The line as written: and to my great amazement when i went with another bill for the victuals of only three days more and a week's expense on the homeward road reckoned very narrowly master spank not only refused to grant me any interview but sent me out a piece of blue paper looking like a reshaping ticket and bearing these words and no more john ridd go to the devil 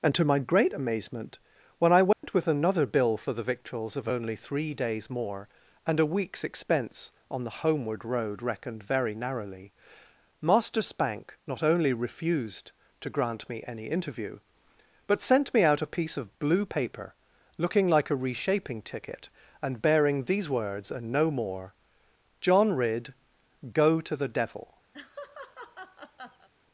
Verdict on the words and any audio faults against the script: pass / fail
fail